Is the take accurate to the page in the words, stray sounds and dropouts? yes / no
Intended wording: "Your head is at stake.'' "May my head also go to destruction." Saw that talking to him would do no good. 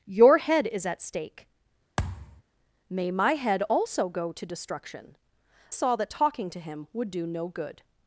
no